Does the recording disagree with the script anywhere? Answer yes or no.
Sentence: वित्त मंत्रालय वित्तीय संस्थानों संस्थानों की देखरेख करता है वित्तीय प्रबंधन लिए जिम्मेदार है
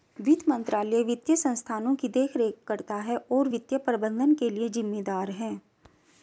yes